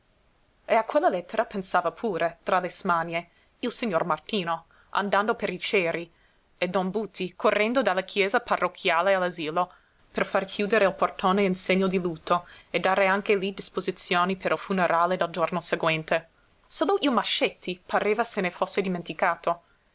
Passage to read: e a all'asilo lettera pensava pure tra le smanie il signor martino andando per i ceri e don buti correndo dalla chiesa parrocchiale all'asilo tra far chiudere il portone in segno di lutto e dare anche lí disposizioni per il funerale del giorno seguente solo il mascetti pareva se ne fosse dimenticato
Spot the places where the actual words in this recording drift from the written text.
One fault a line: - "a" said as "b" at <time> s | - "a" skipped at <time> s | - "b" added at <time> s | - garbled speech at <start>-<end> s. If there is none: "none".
- "all'asilo" said as "quella" at 0.8 s
- "tra" said as "per" at 10.1 s